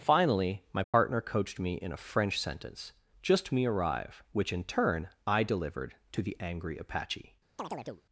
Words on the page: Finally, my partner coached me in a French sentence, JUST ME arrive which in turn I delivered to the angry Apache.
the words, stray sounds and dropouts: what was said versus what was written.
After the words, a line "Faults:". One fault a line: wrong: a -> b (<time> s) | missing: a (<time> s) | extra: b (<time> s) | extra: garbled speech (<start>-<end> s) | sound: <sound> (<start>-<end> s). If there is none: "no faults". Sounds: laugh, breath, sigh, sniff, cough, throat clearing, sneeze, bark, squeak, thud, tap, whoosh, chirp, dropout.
Finally, my partner coached me in a French sentence, JUST ME arrive which in turn I delivered to the angry Apache.
Faults:
sound: dropout (0.8-0.9 s)
sound: chirp (7.6-8.0 s)